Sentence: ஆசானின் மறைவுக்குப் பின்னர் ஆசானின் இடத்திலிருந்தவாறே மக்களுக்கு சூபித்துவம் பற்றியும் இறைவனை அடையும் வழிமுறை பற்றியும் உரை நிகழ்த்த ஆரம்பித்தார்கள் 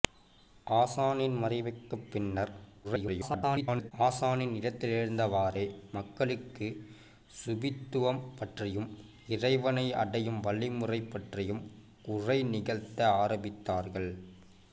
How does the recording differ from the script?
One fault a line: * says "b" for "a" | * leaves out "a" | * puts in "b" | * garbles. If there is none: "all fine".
* garbles